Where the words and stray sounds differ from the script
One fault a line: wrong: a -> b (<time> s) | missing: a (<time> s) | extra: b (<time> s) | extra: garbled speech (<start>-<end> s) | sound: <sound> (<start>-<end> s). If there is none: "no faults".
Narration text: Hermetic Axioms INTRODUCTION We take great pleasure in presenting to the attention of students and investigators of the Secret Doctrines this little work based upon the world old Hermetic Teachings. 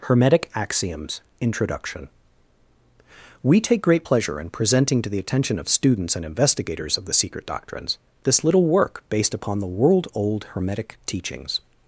no faults